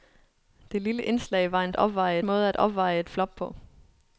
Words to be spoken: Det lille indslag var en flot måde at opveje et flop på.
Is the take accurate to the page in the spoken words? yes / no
no